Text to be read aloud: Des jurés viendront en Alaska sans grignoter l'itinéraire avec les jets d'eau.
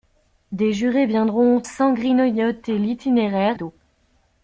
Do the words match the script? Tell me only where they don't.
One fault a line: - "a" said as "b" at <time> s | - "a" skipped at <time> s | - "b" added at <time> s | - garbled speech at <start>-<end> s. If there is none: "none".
- "en Alaska" skipped at 1.6 s
- "avec les jets" skipped at 3.6 s